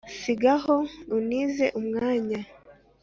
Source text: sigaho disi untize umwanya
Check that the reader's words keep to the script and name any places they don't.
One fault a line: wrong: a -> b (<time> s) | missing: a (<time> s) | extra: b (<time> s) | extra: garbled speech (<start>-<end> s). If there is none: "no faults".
missing: disi (0.8 s)